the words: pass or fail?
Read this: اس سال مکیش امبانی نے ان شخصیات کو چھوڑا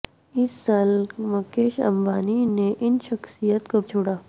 pass